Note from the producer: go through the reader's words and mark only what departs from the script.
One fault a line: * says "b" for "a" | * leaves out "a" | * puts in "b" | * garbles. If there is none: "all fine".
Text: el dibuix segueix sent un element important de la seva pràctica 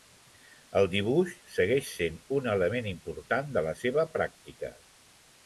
all fine